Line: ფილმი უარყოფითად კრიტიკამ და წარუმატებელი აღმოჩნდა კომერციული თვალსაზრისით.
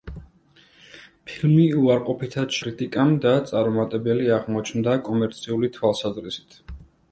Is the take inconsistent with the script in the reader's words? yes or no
no